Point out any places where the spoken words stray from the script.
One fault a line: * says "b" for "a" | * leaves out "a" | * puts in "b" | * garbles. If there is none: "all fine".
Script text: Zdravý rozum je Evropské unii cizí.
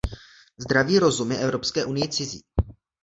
all fine